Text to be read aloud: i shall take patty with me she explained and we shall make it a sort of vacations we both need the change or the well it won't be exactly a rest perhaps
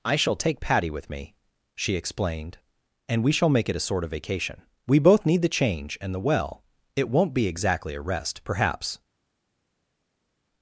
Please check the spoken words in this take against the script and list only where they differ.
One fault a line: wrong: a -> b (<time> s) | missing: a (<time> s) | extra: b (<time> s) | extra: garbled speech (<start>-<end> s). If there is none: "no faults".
wrong: vacations -> vacation (4.1 s)
wrong: or -> and (6.0 s)